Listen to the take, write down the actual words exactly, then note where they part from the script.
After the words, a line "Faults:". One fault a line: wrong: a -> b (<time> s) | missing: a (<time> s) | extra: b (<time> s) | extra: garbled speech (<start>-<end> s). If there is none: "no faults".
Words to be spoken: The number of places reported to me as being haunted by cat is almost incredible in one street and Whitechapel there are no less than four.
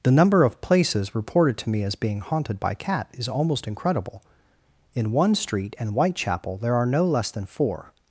The number of places reported to me as being haunted by cat is almost incredible in one street and Whitechapel there are no less than four.
Faults:
no faults